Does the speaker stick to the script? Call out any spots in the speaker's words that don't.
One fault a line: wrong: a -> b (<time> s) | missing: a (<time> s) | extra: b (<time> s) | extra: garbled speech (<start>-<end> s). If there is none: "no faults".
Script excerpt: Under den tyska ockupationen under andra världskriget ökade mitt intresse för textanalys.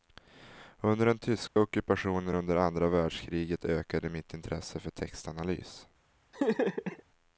no faults